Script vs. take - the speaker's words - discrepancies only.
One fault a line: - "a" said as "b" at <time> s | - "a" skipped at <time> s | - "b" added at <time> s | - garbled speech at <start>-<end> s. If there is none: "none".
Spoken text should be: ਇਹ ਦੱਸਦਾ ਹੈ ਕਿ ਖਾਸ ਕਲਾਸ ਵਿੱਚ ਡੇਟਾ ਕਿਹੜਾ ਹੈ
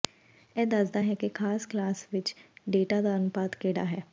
- "ਦਾ ਅਨੁਪਾਤ" added at 3.0 s